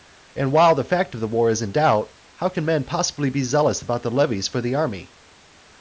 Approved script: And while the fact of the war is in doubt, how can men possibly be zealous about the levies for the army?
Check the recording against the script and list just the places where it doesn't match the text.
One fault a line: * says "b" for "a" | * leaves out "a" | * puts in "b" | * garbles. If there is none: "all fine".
all fine